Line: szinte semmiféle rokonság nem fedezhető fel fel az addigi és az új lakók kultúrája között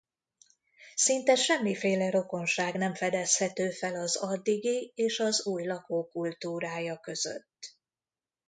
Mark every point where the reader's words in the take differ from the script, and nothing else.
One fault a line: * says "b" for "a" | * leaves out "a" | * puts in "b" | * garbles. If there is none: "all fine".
* leaves out "fel"